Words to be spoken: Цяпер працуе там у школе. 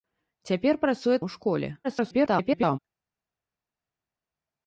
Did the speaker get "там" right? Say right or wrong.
wrong